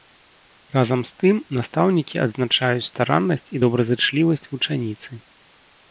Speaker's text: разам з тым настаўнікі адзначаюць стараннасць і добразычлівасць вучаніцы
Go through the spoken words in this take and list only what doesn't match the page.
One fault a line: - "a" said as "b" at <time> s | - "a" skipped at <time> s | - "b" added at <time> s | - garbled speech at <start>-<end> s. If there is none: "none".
none